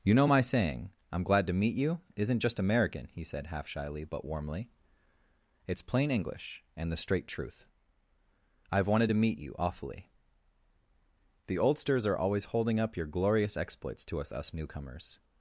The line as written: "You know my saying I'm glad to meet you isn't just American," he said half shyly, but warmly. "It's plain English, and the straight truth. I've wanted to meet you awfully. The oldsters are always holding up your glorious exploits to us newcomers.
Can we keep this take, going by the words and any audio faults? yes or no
no